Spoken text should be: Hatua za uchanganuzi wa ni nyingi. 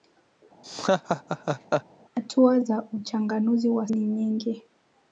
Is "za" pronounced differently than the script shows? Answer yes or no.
no